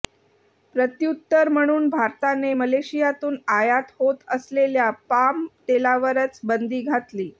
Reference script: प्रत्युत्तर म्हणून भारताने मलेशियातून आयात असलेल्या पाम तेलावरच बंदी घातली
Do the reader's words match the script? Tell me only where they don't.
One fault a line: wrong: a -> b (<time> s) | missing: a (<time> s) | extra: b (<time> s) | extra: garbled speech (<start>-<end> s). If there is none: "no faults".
extra: होत (4.0 s)